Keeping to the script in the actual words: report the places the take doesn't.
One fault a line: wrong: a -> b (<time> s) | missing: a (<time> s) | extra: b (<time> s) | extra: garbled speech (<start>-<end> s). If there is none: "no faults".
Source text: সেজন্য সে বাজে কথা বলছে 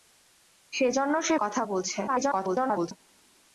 missing: বাজে (1.4 s)
extra: garbled speech (2.1-2.9 s)